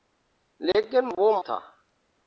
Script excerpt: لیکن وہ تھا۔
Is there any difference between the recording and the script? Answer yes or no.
no